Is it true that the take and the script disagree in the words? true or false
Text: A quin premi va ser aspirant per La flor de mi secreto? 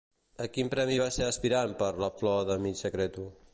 false